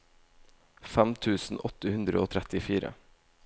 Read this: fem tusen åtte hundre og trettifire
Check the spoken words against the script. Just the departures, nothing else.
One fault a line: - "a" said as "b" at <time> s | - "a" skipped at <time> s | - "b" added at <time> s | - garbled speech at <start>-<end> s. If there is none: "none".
none